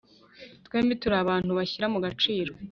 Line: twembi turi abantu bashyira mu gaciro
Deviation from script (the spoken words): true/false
false